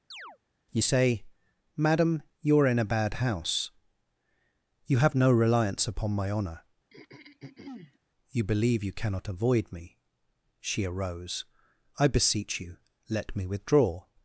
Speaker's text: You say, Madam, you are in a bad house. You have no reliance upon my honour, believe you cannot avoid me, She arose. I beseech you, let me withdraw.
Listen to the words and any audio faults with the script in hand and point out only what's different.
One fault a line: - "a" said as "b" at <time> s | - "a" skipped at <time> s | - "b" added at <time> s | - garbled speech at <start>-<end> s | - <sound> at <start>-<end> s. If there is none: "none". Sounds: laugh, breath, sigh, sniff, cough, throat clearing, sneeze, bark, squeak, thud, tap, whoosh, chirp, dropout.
- chirp at 0.1-0.4 s
- throat clearing at 6.9-8.0 s
- "you" added at 8.3 s